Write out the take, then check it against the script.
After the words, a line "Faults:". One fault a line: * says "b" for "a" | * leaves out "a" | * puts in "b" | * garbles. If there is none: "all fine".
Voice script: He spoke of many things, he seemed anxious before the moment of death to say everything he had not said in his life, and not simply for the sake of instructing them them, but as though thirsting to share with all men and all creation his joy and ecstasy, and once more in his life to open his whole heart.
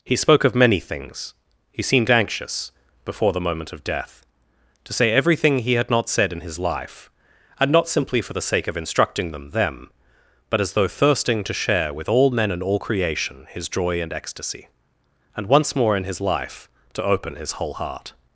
He spoke of many things, he seemed anxious before the moment of death to say everything he had not said in his life, and not simply for the sake of instructing them them, but as though thirsting to share with all men and all creation his joy and ecstasy, and once more in his life to open his whole heart.
Faults:
all fine